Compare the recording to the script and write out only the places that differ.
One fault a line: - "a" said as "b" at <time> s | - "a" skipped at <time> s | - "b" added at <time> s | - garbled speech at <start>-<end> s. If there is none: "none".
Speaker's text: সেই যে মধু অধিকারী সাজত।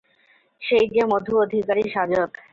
none